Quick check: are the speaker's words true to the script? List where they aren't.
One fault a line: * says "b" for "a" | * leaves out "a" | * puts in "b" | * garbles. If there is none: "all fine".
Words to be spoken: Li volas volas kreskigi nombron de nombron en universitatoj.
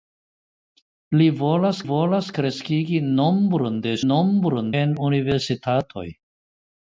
all fine